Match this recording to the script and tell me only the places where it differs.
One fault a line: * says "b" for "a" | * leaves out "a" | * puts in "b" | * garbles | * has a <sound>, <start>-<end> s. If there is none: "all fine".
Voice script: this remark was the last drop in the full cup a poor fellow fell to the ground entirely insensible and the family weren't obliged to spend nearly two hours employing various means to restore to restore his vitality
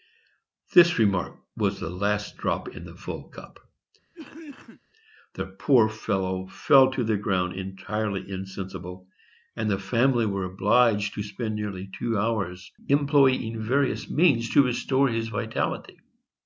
* has a cough, 4.1-4.8 s
* says "the" for "a"
* says "were" for "weren't"
* leaves out "to restore"